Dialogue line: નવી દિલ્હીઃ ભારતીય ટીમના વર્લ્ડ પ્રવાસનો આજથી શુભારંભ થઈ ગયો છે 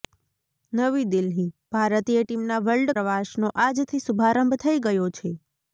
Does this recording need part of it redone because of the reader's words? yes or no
no